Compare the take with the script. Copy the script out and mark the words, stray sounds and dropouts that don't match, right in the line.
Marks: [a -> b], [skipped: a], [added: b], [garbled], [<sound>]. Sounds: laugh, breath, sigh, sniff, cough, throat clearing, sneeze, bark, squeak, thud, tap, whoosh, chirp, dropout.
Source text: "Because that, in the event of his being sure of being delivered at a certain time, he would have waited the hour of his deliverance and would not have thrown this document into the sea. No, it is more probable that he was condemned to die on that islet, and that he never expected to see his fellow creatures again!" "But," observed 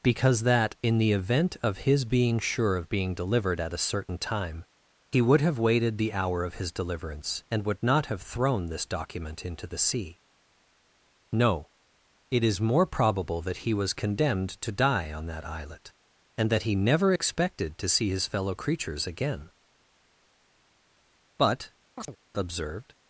"Because that, in the event of his being sure of being delivered at a certain time, he would have waited the hour of his deliverance and would not have thrown this document into the sea. No, it is more probable that he was condemned to die on that islet, and that he never expected to see his fellow creatures again!" "But," [chirp] observed